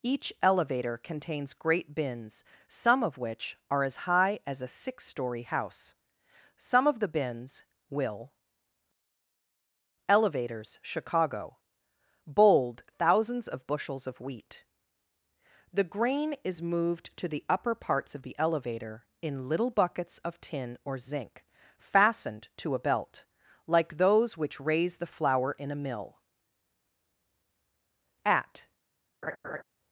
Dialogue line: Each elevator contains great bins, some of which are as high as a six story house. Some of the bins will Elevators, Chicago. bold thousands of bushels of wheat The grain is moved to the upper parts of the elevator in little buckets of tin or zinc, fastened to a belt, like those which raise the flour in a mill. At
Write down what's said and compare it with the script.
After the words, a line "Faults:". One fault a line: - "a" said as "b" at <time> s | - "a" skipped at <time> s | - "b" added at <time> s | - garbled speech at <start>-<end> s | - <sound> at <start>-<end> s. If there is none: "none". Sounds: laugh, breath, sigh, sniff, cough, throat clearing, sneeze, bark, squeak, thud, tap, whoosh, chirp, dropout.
Each elevator contains great bins, some of which are as high as a six story house. Some of the bins will Elevators, Chicago. bold thousands of bushels of wheat The grain is moved to the upper parts of the elevator in little buckets of tin or zinc, fastened to a belt, like those which raise the flour in a mill. At
Faults:
- laugh at 29.2-29.6 s